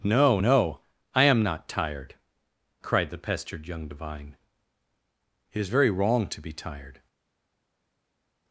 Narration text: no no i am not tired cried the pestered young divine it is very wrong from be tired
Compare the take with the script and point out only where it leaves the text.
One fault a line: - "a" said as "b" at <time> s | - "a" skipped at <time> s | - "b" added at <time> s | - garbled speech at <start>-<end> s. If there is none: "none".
- "from" said as "to" at 6.3 s